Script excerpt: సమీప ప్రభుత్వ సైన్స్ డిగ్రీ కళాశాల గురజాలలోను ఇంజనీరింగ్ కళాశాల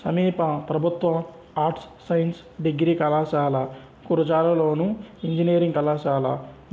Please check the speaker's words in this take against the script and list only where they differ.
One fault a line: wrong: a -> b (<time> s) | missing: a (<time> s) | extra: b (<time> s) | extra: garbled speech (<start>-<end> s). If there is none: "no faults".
extra: ఆర్ట్స్ (1.6 s)